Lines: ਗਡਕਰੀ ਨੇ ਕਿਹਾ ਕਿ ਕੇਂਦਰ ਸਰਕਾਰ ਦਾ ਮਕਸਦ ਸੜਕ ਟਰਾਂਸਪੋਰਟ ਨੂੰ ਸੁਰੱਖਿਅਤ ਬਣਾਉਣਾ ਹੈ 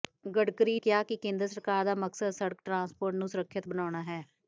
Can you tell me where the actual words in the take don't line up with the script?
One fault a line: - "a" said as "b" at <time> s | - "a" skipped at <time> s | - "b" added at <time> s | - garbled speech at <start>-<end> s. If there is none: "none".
- "ਨੇ" skipped at 0.8 s